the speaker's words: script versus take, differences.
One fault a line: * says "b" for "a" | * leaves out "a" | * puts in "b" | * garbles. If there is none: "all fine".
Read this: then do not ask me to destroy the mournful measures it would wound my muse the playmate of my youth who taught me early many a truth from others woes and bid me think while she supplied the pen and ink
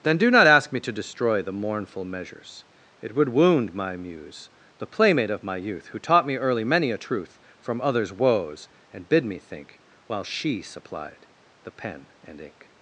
all fine